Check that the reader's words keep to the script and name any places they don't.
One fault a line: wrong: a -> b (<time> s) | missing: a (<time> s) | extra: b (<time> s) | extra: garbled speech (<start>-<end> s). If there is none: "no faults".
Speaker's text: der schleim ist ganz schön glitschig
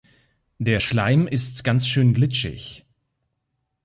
no faults